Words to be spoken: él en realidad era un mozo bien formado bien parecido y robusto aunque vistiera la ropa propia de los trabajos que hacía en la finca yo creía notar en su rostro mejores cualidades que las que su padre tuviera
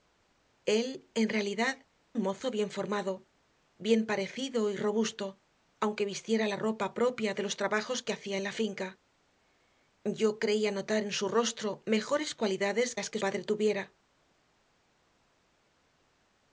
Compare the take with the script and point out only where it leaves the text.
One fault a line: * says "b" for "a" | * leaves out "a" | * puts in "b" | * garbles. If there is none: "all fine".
* leaves out "era"
* leaves out "que"
* leaves out "su"